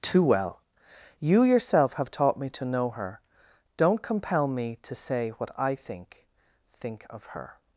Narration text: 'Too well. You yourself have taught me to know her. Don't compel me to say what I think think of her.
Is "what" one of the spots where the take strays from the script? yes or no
no